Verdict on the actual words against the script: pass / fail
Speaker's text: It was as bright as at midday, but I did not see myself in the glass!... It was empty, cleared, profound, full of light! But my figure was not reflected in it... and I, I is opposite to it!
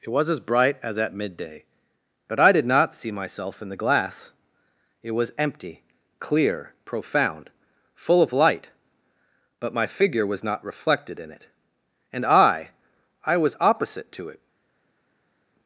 fail